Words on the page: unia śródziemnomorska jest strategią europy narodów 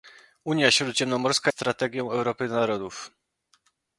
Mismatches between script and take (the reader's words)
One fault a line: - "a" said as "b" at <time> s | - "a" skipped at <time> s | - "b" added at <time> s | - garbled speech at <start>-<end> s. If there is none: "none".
- "jest" skipped at 1.5 s